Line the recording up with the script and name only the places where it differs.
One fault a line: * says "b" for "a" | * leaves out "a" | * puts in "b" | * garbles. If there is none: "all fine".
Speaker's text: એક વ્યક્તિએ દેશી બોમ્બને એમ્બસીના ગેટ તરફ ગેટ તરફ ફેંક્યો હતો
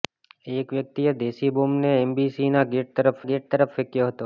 all fine